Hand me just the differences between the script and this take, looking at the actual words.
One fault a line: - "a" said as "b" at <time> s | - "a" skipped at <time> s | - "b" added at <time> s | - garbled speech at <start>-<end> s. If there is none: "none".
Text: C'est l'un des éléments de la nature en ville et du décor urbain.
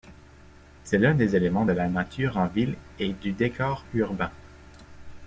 none